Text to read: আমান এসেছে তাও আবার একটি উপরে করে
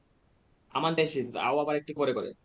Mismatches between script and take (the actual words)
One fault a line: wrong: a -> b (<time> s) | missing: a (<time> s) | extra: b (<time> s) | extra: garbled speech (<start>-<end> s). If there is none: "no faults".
no faults